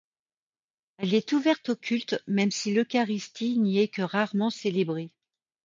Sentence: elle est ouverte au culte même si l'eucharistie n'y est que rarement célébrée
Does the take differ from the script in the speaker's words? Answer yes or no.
no